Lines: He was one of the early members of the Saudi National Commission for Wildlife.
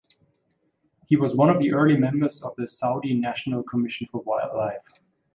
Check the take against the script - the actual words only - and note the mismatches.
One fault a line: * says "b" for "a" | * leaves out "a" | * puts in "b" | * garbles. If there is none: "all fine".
all fine